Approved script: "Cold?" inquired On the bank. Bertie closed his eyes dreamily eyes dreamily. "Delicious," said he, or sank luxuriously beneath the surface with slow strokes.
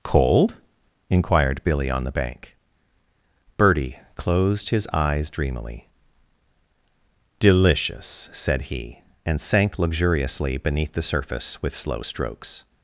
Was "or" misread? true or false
true